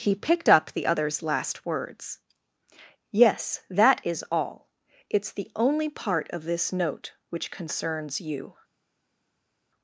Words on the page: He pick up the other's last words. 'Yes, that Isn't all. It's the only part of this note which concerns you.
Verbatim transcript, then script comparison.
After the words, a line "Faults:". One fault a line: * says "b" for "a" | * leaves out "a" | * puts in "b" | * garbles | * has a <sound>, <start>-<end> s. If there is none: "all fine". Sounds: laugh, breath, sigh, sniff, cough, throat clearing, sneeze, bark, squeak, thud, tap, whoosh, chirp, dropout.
He picked up the other's last words. 'Yes, that IS all. It's the only part of this note which concerns you.
Faults:
* says "picked" for "pick"
* says "IS" for "Isn't"